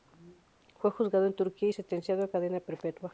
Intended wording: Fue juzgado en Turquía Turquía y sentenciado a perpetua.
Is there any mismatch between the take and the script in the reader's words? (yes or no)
yes